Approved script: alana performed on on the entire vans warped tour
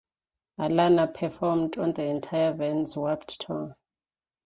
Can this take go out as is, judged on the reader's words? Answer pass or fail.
fail